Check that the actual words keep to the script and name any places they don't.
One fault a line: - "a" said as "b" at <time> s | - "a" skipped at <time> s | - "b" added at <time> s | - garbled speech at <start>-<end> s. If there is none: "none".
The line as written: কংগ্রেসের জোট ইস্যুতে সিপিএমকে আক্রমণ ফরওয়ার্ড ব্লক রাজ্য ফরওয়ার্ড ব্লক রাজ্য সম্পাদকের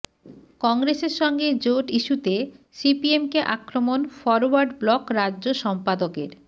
- "সঙ্গে" added at 1.2 s
- "ফরওয়ার্ড ব্লক রাজ্য" skipped at 5.4 s